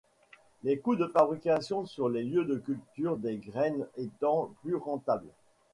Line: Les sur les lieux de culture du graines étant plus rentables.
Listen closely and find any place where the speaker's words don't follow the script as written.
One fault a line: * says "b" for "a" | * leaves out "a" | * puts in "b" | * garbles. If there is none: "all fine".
* puts in "coûts de fabrication"
* says "des" for "du"